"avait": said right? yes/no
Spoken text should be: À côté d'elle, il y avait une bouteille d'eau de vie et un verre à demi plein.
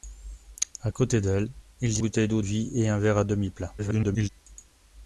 no